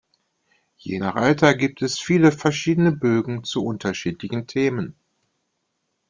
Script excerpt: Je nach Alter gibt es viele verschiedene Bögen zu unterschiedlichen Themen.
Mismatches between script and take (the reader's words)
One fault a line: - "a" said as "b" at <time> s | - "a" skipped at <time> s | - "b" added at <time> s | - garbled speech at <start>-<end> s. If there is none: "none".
none